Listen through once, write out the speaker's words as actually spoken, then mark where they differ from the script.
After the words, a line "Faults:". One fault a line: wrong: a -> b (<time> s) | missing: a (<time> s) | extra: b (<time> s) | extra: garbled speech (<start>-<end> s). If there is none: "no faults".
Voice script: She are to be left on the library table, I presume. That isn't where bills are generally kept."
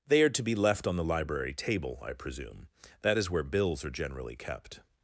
They are to be left on the library table, I presume. That is where bills are generally kept."
Faults:
wrong: She -> They (0.1 s)
wrong: isn't -> is (3.2 s)